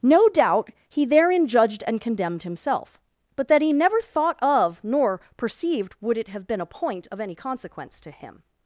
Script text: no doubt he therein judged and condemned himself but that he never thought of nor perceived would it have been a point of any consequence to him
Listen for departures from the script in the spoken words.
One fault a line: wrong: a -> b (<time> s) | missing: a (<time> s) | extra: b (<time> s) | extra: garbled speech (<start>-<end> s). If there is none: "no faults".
no faults